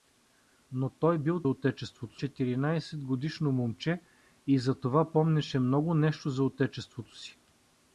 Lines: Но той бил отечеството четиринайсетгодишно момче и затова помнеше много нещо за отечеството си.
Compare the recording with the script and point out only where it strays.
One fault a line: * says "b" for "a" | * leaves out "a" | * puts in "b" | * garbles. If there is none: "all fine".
all fine